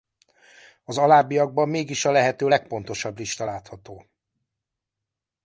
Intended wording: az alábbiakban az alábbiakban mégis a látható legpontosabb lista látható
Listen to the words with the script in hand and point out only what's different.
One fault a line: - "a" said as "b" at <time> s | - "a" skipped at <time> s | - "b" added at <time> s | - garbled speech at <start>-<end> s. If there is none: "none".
- "az alábbiakban" skipped at 1.7 s
- "látható" said as "lehető" at 2.1 s